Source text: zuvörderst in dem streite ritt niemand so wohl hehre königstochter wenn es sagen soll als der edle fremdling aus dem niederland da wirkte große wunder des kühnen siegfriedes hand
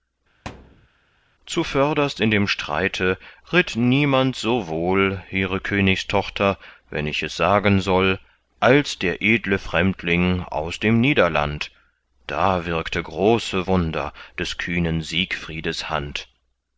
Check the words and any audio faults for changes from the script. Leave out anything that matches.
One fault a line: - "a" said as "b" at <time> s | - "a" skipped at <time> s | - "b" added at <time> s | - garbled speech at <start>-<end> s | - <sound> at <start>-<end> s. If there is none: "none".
- thud at 0.4-0.9 s
- "ich" added at 7.0 s